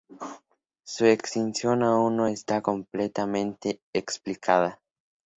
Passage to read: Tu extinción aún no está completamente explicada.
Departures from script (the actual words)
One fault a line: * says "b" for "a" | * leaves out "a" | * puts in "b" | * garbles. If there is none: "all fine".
* says "Su" for "Tu"